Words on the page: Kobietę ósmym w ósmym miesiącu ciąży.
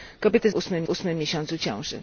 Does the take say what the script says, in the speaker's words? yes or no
yes